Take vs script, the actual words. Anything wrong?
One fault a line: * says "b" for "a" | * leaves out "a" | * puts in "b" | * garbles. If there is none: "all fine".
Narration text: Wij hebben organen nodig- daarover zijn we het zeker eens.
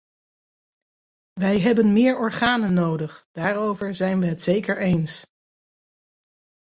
* puts in "meer"